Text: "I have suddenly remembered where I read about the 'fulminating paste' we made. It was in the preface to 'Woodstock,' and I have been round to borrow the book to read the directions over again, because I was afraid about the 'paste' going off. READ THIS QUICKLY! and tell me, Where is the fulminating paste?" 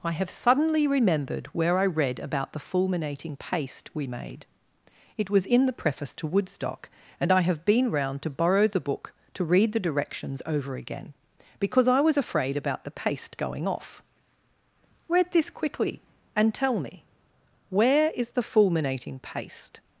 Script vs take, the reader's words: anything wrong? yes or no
no